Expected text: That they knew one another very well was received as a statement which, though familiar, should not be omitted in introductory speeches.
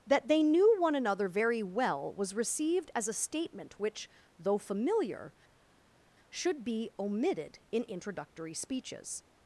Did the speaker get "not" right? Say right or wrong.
wrong